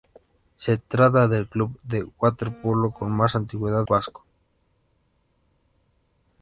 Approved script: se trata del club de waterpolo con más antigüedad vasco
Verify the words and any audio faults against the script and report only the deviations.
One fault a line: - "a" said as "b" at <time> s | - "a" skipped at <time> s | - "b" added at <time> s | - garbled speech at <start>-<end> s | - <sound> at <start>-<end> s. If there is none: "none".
none